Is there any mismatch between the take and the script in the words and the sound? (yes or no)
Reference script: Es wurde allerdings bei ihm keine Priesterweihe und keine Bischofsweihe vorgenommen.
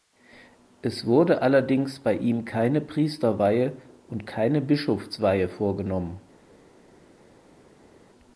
no